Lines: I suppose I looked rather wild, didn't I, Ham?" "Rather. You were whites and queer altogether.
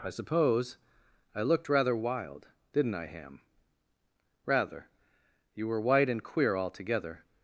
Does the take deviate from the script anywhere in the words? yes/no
yes